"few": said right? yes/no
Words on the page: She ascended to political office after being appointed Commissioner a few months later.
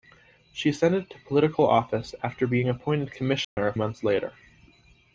no